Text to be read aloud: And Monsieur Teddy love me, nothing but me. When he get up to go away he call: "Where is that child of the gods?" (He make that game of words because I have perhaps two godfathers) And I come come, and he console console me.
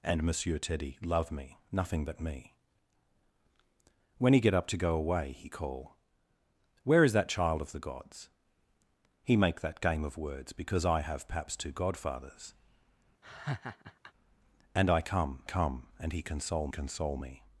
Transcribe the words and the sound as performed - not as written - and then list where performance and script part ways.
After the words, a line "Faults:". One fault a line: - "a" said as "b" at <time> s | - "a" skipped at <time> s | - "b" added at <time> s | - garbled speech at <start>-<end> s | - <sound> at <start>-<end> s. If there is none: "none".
And Monsieur Teddy love me, nothing but me. When he get up to go away he call: "Where is that child of the gods?" (He make that game of words because I have perhaps two godfathers) And I come come, and he console console me.
Faults:
- laugh at 13.2-14.1 s